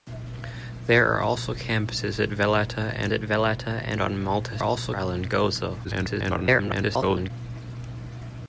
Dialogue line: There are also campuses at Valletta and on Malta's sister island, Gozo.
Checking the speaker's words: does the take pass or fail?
fail